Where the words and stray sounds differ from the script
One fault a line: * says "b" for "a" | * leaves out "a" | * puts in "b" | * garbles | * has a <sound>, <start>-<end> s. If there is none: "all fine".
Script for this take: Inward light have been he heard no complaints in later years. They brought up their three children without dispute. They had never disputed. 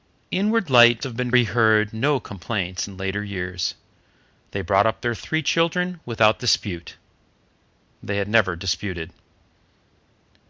all fine